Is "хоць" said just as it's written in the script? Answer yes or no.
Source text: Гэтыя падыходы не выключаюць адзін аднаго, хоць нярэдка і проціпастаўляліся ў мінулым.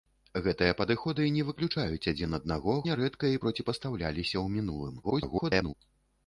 no